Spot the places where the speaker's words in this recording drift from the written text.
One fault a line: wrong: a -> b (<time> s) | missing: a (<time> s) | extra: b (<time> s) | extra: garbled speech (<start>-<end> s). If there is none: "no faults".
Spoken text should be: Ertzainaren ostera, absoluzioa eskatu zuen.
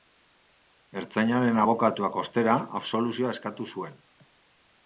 extra: abokatuak (1.6 s)